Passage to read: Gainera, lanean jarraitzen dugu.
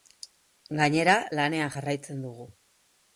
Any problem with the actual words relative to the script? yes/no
no